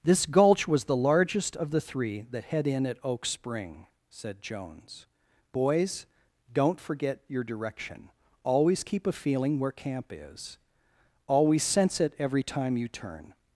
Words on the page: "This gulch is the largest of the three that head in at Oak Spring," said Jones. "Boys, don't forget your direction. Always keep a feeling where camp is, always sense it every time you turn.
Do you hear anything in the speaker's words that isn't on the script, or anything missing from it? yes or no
yes